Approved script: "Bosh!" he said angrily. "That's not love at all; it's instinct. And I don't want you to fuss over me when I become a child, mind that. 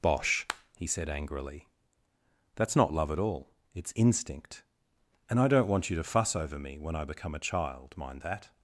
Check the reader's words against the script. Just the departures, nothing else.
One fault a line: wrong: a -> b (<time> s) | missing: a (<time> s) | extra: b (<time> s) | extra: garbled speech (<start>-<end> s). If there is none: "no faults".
no faults